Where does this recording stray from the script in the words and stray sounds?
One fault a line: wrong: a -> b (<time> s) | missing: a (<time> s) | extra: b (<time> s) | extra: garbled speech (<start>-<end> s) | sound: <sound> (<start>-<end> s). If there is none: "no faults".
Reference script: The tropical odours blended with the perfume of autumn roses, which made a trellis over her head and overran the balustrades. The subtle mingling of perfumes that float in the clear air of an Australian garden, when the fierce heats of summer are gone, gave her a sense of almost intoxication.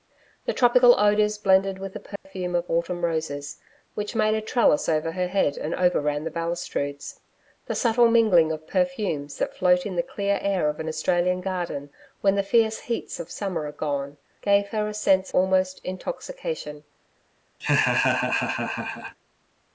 sound: dropout (2.2-2.3 s)
missing: of (15.3 s)
sound: laugh (17.6-19.2 s)